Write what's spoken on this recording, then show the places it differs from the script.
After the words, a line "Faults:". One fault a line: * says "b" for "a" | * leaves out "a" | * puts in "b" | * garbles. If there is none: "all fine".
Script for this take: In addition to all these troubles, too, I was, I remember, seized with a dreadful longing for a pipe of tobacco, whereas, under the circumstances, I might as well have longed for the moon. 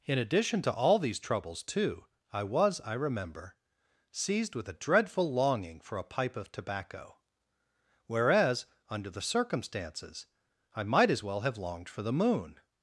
In addition to all these troubles, too, I was, I remember, seized with a dreadful longing for a pipe of tobacco, whereas, under the circumstances, I might as well have longed for the moon.
Faults:
all fine